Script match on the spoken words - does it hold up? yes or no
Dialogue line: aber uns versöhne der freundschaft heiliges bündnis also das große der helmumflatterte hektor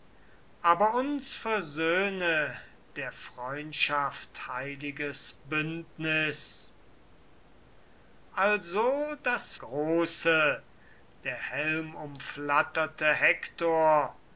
yes